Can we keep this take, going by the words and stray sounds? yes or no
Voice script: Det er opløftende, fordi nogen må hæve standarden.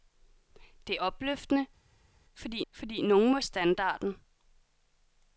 no